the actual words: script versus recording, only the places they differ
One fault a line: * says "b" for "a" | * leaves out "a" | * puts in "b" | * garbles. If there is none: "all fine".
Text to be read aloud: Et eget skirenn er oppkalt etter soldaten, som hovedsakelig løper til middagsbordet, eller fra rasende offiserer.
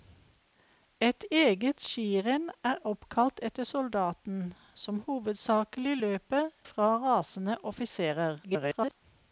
* leaves out "til middagsbordet eller"
* garbles